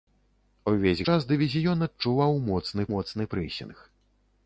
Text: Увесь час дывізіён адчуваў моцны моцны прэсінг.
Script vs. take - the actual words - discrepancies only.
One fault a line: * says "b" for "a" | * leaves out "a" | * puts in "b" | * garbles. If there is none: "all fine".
all fine